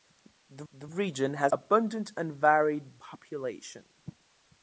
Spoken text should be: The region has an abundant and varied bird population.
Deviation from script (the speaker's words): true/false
true